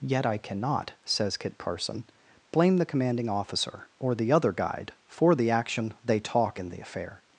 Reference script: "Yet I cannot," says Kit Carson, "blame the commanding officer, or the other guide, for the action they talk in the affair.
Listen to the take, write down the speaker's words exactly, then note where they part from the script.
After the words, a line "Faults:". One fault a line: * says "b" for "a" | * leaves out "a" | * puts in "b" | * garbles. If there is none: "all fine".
"Yet I cannot," says Kit Carson, "blame the commanding officer, or the other guide, for the action they talk in the affair.
Faults:
all fine